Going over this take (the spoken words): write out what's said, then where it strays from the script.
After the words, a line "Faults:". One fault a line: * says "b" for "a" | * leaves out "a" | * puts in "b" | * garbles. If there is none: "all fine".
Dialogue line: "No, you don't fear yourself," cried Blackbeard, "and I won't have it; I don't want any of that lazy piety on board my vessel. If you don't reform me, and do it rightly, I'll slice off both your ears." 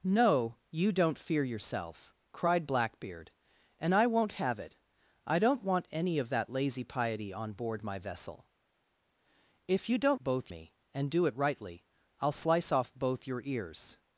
"No, you don't fear yourself," cried Blackbeard, "and I won't have it; I don't want any of that lazy piety on board my vessel. If you don't both me, and do it rightly, I'll slice off both your ears."
Faults:
* says "both" for "reform"